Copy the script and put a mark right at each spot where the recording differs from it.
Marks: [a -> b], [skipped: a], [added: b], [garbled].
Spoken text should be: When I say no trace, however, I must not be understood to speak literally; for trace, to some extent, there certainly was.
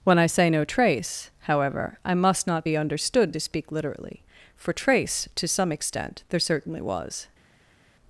When I say no trace, however, I must not be understood to speak literally; for trace, to some extent, there certainly was.